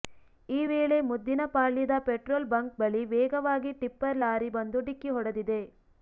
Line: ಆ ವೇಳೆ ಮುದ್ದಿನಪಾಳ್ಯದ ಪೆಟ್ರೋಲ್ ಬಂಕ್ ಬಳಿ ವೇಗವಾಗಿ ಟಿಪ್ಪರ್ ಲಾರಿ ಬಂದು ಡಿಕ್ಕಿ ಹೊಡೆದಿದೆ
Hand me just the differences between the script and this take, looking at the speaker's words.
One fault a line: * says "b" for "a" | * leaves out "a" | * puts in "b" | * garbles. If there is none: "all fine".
* says "ಈ" for "ಆ"